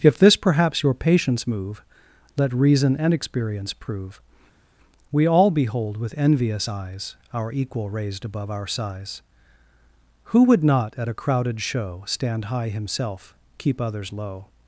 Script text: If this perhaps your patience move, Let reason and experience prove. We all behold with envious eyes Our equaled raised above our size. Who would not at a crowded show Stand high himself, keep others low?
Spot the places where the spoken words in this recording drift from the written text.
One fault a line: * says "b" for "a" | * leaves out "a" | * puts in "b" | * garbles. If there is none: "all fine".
* says "equal" for "equaled"